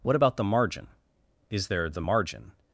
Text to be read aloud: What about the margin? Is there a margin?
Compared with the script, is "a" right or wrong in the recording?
wrong